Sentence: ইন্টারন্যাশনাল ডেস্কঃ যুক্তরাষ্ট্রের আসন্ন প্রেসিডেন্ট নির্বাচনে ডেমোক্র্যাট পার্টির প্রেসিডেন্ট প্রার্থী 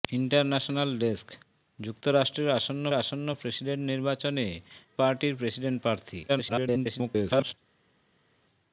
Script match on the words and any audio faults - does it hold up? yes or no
no